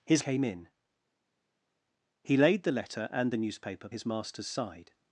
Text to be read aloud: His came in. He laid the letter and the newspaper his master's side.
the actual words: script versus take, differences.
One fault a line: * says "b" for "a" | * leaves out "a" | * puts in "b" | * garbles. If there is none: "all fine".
all fine